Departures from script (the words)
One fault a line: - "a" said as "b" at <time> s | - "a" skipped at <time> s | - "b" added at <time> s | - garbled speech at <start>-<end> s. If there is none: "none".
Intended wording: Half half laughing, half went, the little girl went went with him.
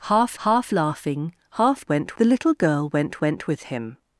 none